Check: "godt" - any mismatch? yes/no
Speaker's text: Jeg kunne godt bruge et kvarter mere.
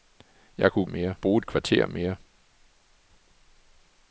yes